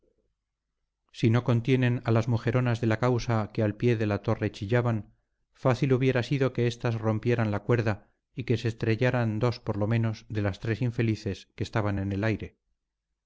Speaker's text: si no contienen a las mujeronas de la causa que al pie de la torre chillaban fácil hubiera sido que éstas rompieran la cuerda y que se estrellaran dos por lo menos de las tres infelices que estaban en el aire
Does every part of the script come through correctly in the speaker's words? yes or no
yes